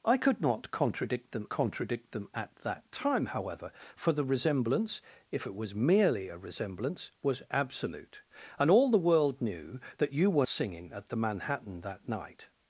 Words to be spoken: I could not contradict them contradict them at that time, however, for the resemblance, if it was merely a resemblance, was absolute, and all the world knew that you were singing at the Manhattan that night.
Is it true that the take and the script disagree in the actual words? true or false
false